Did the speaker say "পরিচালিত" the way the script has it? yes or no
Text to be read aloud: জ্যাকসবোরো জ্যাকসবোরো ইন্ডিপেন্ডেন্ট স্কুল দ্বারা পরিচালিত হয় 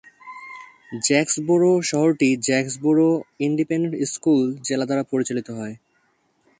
yes